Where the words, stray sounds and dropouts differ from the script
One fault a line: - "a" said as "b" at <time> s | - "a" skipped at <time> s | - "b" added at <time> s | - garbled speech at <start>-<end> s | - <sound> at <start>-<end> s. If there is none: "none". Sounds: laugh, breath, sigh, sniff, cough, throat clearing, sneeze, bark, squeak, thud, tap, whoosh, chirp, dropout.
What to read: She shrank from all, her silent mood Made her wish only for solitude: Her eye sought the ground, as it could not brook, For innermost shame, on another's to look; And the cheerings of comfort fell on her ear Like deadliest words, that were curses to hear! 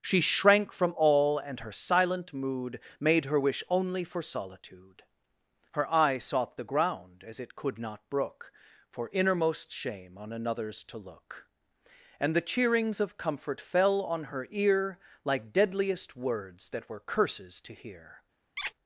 - "and" added at 1.4 s
- squeak at 18.6-18.7 s